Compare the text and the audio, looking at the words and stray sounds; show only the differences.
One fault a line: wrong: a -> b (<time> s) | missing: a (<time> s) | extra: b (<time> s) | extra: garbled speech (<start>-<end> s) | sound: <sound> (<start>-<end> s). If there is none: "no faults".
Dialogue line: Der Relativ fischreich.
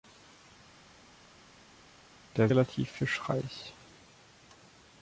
no faults